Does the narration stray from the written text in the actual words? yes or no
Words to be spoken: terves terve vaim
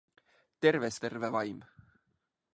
no